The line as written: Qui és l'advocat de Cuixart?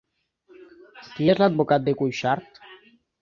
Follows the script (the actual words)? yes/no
yes